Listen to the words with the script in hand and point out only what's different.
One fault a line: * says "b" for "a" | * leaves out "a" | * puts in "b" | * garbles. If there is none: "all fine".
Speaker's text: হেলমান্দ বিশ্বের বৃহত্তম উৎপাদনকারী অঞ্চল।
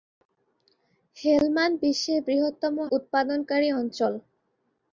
all fine